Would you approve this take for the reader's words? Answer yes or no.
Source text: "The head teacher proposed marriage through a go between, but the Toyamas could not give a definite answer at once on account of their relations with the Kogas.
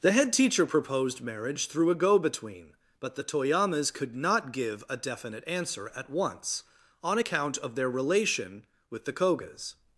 no